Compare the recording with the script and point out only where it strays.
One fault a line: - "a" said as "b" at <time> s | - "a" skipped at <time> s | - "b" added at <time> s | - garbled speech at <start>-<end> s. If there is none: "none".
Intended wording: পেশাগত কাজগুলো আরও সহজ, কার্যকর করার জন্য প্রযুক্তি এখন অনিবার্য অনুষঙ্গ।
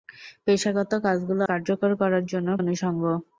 - "আরও সহজ" skipped at 1.4 s
- "প্রযুক্তি এখন অনিবার্য" skipped at 2.5 s